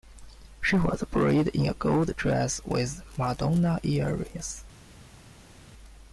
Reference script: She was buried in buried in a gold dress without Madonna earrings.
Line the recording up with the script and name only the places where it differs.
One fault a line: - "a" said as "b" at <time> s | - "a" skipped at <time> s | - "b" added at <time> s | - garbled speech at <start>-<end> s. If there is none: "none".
- "buried in" skipped at 1.7 s
- "without" said as "with" at 2.7 s